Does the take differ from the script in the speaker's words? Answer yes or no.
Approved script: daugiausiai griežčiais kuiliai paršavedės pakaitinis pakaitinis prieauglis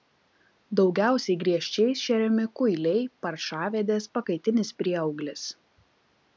yes